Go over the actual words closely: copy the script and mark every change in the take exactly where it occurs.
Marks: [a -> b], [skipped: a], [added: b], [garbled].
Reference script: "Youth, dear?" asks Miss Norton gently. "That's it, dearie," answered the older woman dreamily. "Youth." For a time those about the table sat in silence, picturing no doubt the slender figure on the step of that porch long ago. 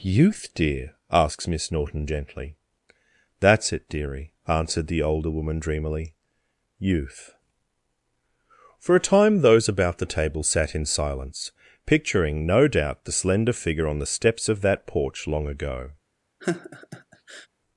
"Youth, dear?" asks Miss Norton gently. "That's it, dearie," answered the older woman dreamily. "Youth." For a time those about the table sat in silence, picturing no doubt the slender figure on the [step -> steps] of that porch long ago.